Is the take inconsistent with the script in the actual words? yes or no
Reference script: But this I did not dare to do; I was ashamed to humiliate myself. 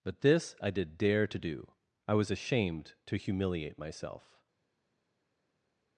yes